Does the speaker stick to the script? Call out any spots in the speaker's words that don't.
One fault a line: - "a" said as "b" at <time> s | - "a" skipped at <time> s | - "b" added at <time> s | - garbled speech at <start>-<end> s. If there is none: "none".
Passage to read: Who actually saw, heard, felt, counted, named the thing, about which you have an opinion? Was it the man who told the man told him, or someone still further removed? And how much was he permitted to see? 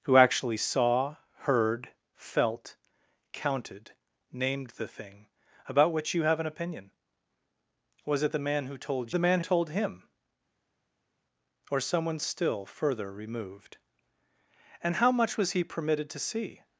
none